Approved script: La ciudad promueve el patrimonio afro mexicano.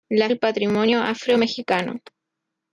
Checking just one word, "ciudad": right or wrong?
wrong